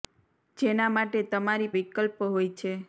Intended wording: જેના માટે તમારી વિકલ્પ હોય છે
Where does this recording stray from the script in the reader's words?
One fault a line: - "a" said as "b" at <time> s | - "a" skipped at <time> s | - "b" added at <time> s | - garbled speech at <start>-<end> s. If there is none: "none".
none